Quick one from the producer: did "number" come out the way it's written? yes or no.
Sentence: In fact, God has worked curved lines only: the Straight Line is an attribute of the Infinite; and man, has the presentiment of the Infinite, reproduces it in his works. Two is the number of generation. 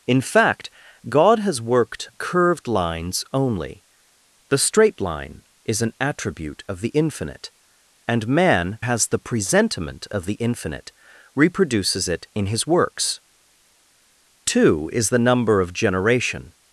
yes